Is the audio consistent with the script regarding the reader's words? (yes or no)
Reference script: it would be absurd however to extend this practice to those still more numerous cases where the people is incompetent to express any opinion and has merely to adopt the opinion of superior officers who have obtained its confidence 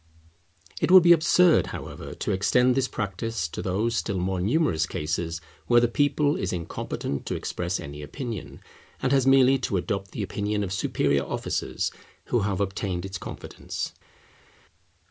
yes